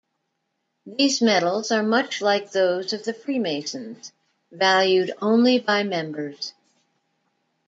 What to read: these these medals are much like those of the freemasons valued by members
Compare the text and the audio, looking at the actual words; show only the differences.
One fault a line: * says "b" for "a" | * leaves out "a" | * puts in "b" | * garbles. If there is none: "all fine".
* leaves out "these"
* puts in "only"